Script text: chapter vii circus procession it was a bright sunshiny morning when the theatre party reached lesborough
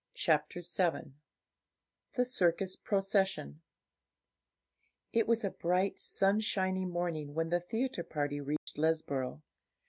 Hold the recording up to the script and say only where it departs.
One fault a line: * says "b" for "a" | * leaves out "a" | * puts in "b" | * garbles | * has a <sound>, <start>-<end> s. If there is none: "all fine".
* puts in "the"
* has a dropout, 8.6-8.7 s